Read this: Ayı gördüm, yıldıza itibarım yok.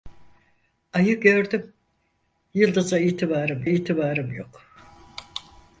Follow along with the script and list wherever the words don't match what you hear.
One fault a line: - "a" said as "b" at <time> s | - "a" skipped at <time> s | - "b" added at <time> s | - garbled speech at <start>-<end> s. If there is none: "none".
- "itibarım" added at 3.6 s